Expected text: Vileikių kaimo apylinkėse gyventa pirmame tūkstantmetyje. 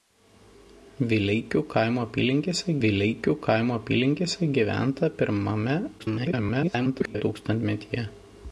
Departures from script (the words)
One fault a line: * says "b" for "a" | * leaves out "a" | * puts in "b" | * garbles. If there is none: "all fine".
* puts in "vileikių kaimo apylinkėse"
* garbles